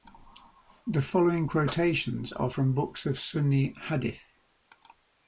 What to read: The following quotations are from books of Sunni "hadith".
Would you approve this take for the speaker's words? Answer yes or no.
yes